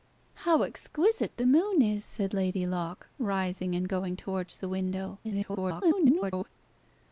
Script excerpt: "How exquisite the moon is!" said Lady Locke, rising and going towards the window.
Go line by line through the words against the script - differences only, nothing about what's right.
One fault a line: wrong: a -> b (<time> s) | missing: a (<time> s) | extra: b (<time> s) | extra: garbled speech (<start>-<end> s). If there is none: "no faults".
extra: garbled speech (5.2-6.5 s)